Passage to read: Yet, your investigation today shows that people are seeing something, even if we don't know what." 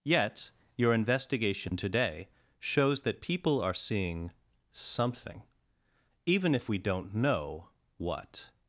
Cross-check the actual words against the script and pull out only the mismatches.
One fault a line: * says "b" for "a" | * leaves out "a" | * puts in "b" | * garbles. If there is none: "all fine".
all fine